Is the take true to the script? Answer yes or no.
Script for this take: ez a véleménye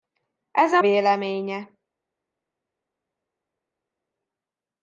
yes